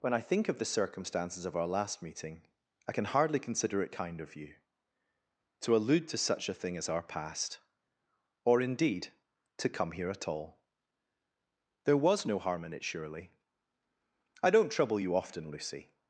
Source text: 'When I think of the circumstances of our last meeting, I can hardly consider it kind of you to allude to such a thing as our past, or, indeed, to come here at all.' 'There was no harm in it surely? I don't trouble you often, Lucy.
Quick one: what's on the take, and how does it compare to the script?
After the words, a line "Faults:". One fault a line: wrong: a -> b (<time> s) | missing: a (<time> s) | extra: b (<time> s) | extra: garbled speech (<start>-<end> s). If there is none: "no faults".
'When I think of the circumstances of our last meeting, I can hardly consider it kind of you to allude to such a thing as our past, or, indeed, to come here at all.' 'There was no harm in it surely? I don't trouble you often, Lucy.
Faults:
no faults